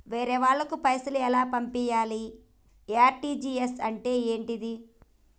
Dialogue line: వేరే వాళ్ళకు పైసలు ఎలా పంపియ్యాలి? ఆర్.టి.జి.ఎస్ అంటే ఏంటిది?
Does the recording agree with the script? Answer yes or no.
yes